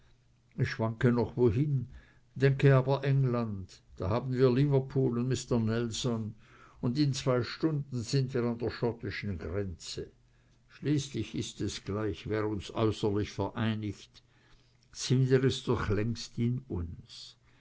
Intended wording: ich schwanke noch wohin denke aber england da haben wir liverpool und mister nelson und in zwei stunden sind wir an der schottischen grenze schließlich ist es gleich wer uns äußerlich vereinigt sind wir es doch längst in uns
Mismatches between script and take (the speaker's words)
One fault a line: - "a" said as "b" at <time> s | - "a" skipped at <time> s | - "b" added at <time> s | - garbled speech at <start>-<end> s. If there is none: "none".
none